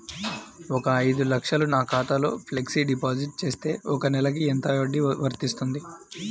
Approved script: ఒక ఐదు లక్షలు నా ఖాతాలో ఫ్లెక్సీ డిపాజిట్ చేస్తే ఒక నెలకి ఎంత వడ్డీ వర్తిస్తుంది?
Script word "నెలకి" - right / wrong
right